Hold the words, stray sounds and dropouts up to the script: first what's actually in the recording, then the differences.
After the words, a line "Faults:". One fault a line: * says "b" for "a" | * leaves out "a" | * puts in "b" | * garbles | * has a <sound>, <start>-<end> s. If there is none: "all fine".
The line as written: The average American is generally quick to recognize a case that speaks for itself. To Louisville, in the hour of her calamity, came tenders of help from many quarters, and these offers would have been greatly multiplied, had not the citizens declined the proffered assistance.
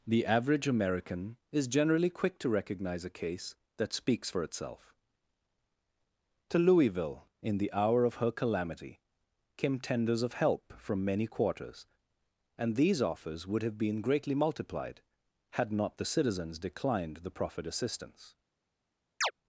The average American is generally quick to recognize a case that speaks for itself. To Louisville, in the hour of her calamity, came tenders of help from many quarters, and these offers would have been greatly multiplied, had not the citizens declined the proffered assistance.
Faults:
* has a chirp, 19.2-19.3 s